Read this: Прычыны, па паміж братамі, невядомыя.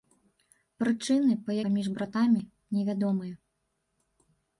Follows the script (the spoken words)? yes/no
yes